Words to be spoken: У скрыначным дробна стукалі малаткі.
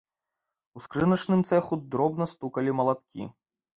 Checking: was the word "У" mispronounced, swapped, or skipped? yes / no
no